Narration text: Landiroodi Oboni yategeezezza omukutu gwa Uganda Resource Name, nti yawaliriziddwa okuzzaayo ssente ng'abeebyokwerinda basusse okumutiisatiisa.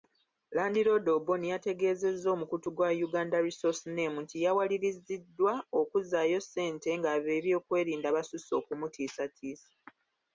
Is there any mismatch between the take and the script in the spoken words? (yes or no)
no